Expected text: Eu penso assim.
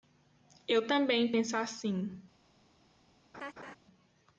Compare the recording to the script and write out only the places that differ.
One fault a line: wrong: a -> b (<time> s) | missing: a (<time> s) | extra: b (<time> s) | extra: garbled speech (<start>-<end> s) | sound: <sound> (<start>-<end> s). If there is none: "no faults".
extra: também (0.9 s)
sound: laugh (3.3-3.8 s)